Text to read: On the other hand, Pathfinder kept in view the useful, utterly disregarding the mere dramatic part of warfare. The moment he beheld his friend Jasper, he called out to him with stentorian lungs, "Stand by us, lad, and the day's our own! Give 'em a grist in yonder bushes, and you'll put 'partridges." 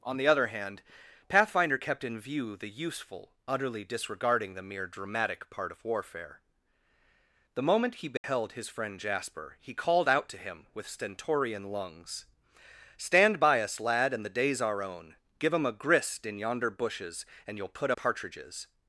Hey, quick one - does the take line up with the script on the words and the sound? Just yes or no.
no